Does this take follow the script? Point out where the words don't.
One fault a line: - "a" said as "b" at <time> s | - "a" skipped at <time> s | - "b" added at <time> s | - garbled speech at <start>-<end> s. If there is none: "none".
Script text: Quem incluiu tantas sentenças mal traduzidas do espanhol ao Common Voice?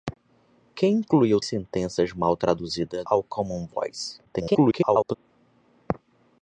- "tantas" skipped at 1.4 s
- "do espanhol" skipped at 3.0 s
- garbled speech at 4.2-5.1 s